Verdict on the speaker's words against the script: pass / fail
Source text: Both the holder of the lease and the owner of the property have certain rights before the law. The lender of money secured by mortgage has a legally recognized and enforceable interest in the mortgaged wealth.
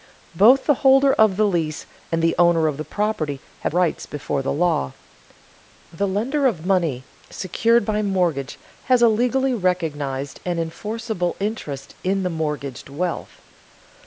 fail